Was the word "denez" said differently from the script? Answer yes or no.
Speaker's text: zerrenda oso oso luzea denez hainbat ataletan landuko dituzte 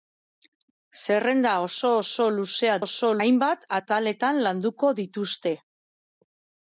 yes